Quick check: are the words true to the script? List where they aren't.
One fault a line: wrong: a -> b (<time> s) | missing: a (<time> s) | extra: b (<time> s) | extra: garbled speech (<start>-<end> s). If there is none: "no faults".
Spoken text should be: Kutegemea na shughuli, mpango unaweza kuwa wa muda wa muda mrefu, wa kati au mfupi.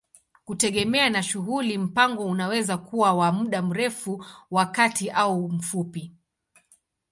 missing: wa muda (3.6 s)